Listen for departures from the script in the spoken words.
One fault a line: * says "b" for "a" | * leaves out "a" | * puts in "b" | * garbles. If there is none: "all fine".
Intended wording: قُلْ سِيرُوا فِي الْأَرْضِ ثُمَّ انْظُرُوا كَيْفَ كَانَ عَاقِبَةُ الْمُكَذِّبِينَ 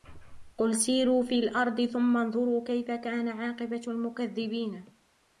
all fine